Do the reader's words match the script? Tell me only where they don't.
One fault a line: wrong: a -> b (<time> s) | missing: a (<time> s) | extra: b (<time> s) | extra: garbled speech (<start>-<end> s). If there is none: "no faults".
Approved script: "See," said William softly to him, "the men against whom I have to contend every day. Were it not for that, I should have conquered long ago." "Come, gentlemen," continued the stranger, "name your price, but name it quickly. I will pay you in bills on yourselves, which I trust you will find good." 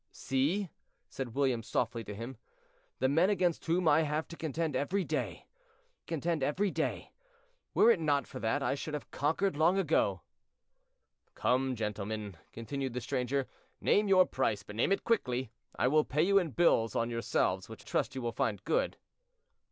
extra: contend every day (6.0 s)
missing: I (17.9 s)